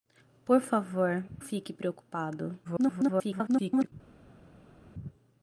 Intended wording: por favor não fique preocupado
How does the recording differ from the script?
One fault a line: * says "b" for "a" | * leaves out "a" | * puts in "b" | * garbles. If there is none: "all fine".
* leaves out "não"
* garbles